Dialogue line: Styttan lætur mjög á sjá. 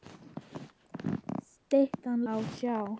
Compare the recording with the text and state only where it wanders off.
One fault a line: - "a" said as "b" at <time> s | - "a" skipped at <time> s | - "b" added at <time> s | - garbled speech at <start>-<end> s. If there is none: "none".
- "lætur mjög" skipped at 2.2 s